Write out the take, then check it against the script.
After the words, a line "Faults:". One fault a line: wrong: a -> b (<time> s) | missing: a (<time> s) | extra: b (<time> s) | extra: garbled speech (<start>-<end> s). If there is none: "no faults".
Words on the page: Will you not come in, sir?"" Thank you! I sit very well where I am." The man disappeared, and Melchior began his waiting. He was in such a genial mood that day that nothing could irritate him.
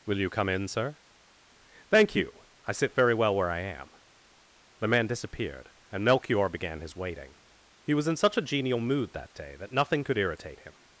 Will you come in, sir?"" Thank you! I sit very well where I am." The man disappeared, and Melchior began his waiting. He was in such a genial mood that day that nothing could irritate him.
Faults:
missing: not (0.3 s)